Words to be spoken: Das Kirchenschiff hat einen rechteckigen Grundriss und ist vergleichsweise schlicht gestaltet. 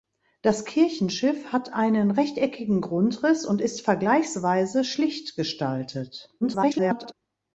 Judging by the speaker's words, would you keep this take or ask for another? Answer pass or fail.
fail